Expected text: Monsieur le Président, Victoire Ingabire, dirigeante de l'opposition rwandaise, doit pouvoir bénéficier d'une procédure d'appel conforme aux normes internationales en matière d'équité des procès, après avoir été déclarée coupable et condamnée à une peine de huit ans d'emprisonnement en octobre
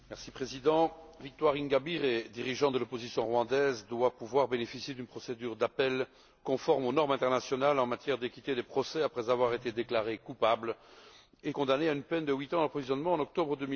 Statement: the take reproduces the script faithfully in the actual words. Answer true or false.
true